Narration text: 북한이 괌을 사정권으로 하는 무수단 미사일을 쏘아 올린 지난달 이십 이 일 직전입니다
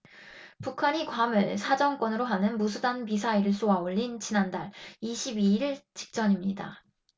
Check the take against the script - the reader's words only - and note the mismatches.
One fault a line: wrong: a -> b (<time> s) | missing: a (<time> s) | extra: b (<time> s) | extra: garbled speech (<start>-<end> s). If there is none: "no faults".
no faults